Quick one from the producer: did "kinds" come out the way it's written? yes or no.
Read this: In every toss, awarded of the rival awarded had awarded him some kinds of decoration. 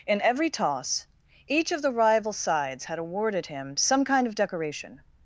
no